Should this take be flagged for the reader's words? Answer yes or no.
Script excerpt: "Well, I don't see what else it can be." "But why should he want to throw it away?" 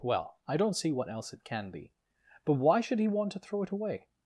no